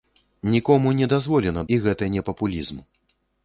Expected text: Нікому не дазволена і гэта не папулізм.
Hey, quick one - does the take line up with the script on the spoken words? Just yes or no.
yes